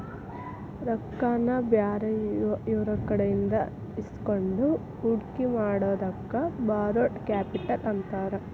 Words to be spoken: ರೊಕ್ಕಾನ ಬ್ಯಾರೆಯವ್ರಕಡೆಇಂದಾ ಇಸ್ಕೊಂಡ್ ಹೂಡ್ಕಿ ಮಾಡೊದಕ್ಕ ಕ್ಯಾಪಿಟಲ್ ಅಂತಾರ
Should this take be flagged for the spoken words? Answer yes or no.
yes